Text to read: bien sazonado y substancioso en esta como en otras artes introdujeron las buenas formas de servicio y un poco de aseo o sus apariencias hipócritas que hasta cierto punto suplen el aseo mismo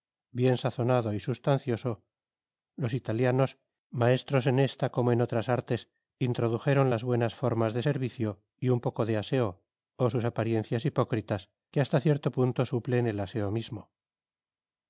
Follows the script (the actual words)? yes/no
no